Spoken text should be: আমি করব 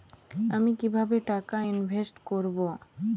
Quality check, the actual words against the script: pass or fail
fail